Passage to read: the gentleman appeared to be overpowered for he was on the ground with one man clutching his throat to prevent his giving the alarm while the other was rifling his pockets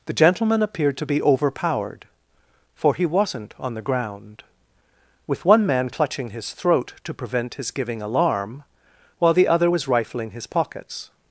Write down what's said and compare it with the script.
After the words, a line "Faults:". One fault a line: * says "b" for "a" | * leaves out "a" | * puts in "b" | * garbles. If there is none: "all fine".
the gentleman appeared to be overpowered for he wasn't on the ground with one man clutching his throat to prevent his giving alarm while the other was rifling his pockets
Faults:
* says "wasn't" for "was"
* leaves out "the"